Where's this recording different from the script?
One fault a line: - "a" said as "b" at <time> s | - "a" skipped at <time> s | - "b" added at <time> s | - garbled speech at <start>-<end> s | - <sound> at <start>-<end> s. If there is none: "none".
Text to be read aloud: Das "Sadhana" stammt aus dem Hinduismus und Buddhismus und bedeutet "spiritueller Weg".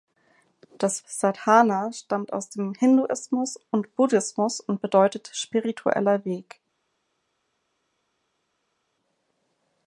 none